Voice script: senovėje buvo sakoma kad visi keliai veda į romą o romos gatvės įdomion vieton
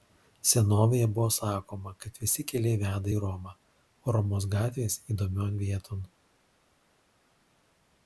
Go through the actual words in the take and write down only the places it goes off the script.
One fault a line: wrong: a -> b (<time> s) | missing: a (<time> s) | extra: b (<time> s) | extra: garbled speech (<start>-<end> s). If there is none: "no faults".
no faults